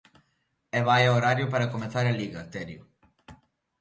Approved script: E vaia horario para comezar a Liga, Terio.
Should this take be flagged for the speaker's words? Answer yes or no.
no